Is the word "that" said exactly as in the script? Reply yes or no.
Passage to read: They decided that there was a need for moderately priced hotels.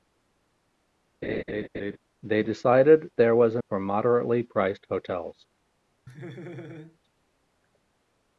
no